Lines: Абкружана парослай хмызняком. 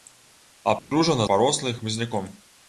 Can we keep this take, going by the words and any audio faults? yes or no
no